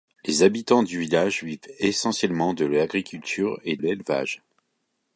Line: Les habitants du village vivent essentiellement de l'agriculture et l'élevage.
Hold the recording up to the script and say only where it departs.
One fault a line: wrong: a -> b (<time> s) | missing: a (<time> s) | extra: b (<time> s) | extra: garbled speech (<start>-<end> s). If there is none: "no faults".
no faults